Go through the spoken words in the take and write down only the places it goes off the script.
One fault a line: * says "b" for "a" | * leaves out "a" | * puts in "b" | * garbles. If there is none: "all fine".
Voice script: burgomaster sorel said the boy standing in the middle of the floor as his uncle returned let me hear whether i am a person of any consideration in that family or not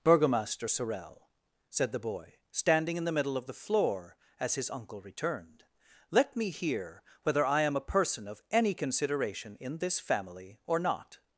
* says "this" for "that"